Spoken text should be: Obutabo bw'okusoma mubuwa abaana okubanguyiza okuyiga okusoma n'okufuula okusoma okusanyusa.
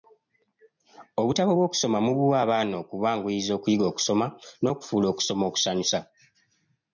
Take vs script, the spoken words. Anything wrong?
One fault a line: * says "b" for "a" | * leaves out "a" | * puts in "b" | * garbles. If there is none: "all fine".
all fine